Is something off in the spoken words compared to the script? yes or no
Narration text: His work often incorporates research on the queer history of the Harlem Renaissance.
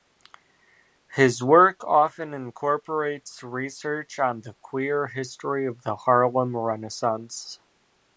no